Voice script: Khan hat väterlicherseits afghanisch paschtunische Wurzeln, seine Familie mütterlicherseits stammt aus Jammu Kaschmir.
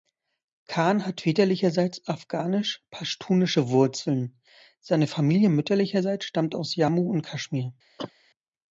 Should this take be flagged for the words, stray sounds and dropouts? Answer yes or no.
yes